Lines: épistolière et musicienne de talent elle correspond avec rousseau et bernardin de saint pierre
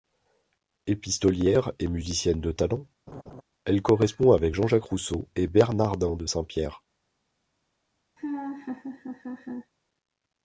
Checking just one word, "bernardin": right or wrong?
right